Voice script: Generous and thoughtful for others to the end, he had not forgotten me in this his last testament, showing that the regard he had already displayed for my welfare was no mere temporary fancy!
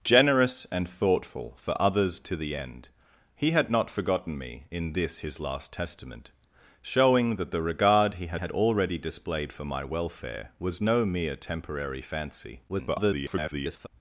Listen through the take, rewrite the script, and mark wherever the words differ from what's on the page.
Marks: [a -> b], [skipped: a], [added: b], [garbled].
Generous and thoughtful for others to the end, he had not forgotten me in this his last testament, showing that the regard he had [added: had] already displayed for my welfare was no mere temporary fancy! [garbled]